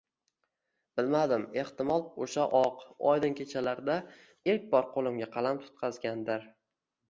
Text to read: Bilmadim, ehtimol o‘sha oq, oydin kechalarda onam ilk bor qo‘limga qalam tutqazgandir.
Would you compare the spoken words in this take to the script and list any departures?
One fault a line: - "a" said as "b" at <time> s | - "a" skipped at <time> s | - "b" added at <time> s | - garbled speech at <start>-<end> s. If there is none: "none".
- "onam" skipped at 4.0 s